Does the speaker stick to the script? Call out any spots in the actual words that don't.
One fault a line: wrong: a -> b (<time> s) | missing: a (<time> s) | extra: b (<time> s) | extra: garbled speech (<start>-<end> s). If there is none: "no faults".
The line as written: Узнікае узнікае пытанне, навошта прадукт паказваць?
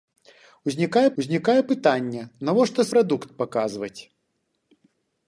no faults